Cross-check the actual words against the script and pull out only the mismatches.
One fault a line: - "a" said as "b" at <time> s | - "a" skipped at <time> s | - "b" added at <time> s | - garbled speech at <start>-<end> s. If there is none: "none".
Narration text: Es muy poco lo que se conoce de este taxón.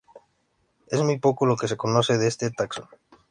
none